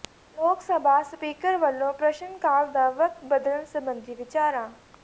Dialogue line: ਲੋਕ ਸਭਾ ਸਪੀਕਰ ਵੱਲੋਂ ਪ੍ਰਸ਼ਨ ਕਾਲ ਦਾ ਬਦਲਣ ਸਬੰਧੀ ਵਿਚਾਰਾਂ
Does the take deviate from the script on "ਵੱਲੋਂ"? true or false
false